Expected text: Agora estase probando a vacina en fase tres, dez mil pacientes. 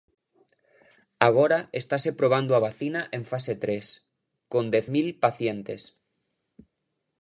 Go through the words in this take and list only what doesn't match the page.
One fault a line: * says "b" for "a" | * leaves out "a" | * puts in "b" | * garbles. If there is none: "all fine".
* puts in "con"